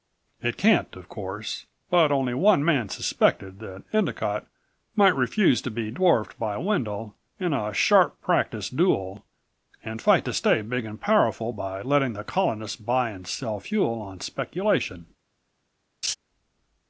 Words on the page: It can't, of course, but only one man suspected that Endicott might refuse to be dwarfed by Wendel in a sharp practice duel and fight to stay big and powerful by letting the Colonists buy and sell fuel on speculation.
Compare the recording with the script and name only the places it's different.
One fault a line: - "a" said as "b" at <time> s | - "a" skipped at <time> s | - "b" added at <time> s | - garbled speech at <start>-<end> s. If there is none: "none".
none